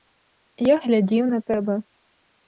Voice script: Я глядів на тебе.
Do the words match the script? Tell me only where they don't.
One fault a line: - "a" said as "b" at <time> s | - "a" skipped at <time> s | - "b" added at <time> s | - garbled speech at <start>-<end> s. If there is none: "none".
none